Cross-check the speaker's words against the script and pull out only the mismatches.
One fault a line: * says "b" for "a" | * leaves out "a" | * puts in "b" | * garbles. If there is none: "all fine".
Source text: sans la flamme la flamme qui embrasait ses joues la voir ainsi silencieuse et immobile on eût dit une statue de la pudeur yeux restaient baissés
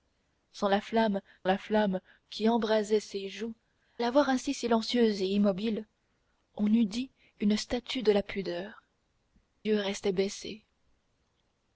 all fine